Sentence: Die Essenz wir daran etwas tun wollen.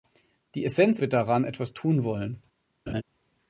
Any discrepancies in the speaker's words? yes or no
no